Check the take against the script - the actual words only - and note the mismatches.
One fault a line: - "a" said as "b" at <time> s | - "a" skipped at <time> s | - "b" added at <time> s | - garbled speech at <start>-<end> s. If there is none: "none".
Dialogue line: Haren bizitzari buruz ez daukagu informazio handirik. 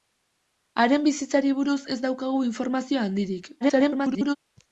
- garbled speech at 3.6-4.4 s